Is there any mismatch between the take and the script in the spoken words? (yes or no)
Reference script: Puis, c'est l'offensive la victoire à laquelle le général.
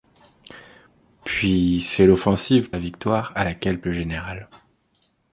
no